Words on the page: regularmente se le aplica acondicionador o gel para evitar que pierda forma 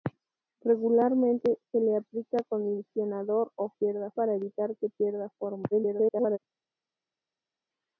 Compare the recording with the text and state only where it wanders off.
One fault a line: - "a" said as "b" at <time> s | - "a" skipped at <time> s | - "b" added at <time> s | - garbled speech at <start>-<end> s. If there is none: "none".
- "gel" said as "pierda" at 3.7 s
- garbled speech at 5.7-6.4 s